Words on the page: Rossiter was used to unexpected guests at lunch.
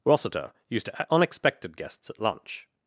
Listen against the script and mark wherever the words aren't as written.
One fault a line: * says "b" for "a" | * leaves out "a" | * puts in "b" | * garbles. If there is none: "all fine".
* leaves out "was"